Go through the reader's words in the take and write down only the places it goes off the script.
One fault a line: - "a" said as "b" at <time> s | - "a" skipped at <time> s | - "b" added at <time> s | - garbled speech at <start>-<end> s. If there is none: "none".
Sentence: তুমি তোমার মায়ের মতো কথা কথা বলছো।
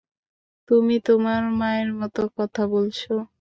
- "কথা" skipped at 2.6 s